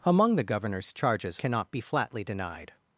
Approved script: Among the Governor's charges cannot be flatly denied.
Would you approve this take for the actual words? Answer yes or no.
yes